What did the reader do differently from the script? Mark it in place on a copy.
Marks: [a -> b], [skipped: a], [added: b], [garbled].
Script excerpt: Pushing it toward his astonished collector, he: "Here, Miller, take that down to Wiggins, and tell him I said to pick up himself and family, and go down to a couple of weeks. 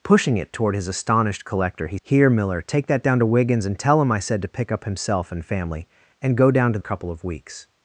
Pushing it toward his astonished collector, he: "Here, Miller, take that down to Wiggins, and tell him I said to pick up himself and family, and go down to a couple of weeks.